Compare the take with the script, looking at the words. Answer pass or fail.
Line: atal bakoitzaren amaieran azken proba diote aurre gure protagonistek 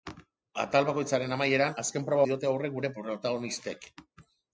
pass